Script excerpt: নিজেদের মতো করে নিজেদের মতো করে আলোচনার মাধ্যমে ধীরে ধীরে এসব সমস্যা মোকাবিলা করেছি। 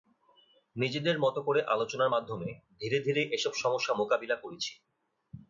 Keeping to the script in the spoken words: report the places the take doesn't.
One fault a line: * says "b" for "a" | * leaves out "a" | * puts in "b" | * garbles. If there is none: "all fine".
* leaves out "নিজেদের মতো করে"